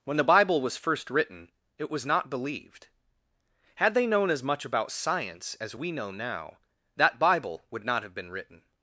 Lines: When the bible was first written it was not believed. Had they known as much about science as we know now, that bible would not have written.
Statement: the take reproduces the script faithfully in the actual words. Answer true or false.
false